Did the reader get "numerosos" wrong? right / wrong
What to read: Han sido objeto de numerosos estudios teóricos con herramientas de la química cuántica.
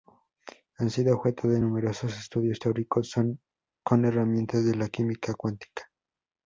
right